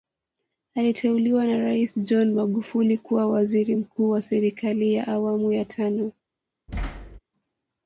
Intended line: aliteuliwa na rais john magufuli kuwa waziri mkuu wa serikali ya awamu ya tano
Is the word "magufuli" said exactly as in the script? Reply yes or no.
yes